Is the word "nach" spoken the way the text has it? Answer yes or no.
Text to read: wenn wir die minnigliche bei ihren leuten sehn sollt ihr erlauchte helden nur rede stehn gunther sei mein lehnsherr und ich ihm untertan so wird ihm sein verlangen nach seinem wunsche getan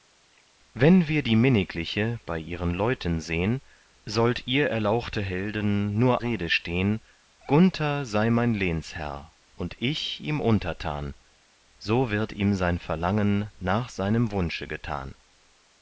yes